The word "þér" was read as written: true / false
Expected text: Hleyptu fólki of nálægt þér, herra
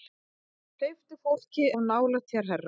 true